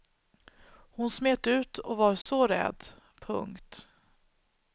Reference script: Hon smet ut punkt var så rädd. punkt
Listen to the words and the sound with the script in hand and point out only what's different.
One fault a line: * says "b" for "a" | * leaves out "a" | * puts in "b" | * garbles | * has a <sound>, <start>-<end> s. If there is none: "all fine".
* says "och" for "punkt"
* has a dropout, 2.2-2.3 s